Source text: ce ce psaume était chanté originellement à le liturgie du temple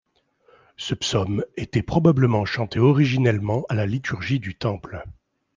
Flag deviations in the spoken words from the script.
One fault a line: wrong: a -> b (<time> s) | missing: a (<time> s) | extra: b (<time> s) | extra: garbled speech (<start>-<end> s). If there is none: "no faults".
missing: ce (0.9 s)
extra: probablement (1.8 s)
wrong: le -> la (3.7 s)